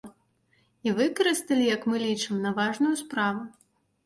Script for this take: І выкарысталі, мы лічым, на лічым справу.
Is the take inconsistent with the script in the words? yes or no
yes